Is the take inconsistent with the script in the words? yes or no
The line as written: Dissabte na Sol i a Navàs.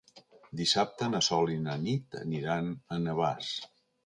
yes